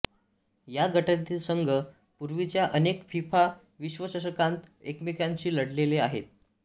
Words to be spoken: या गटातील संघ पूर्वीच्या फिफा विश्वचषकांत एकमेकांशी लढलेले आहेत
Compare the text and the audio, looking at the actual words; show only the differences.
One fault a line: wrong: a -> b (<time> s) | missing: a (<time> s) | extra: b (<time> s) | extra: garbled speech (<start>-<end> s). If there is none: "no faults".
extra: अनेक (2.7 s)